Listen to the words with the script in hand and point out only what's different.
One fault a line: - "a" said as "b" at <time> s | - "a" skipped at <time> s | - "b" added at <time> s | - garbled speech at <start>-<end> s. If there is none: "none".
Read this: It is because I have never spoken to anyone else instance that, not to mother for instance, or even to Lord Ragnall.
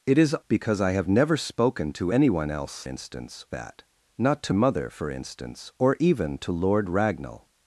none